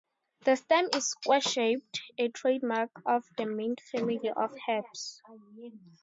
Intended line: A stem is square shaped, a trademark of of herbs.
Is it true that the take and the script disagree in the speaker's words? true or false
true